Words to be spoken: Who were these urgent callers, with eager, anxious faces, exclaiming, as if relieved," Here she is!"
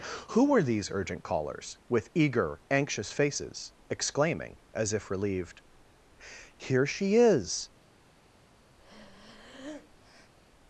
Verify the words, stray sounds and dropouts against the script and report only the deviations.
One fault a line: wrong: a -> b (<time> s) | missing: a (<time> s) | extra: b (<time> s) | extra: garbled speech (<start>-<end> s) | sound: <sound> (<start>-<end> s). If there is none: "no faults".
sound: breath (8.8-10.3 s)